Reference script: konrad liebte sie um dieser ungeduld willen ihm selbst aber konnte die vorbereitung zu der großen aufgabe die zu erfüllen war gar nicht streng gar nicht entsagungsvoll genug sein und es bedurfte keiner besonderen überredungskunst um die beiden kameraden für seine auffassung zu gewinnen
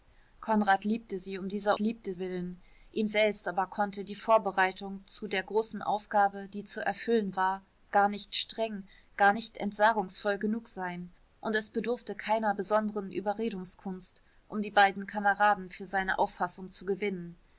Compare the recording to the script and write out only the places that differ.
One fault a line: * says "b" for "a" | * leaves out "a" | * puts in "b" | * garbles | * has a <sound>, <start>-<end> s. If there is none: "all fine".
* says "liebte" for "ungeduld"